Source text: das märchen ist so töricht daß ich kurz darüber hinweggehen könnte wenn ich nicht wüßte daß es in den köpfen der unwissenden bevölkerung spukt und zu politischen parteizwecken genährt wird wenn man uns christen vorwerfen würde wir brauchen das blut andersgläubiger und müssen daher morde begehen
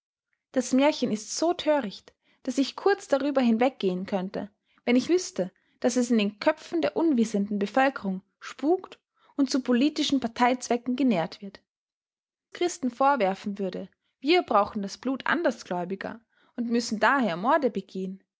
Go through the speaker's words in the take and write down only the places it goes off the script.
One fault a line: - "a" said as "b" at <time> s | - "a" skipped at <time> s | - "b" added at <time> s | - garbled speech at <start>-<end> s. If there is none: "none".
- "nicht" skipped at 5.1 s
- "wenn man uns" skipped at 11.6 s